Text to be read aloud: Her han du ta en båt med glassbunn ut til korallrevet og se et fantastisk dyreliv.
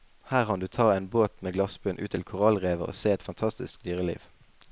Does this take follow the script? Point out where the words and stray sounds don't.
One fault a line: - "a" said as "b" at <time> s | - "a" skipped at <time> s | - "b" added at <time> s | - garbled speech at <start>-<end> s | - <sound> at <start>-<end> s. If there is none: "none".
none